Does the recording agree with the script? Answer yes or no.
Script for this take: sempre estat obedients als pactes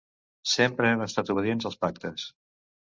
no